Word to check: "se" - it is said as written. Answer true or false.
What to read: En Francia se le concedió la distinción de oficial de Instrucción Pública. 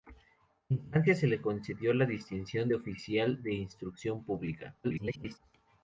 true